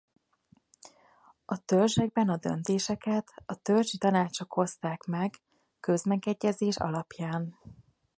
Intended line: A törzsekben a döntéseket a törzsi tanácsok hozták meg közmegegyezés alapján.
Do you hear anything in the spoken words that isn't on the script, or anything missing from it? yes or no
no